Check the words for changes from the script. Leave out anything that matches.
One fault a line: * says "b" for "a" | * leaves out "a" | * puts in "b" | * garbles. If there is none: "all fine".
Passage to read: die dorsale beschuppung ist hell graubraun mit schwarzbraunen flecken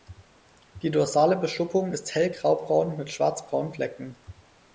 all fine